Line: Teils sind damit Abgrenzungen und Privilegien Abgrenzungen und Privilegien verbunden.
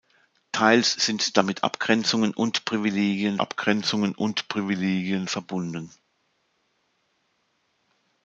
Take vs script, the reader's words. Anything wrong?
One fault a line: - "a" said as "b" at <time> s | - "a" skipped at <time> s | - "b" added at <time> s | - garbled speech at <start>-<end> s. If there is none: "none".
none